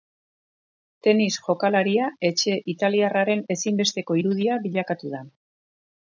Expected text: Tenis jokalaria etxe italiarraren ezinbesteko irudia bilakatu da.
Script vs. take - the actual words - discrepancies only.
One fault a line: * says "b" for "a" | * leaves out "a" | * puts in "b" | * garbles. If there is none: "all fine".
all fine